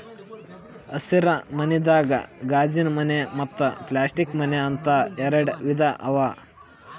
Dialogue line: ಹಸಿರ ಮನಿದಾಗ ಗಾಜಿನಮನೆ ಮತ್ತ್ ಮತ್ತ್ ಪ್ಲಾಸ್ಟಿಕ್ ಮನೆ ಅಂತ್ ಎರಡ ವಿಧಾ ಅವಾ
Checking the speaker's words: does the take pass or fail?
fail